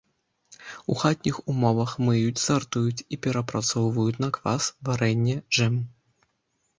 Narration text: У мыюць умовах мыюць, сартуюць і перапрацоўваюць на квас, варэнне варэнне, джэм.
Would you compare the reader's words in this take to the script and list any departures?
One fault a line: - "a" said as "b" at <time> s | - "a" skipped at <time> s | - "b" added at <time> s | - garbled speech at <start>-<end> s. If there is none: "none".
- "мыюць" said as "хатніх" at 1.0 s
- "варэнне" skipped at 5.4 s